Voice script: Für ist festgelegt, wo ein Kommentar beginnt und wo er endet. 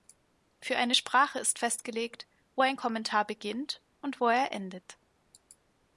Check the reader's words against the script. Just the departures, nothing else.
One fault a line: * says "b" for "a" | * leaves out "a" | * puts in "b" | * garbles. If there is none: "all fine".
* puts in "eine Sprache"